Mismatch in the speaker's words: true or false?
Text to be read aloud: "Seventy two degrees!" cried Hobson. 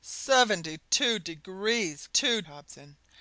true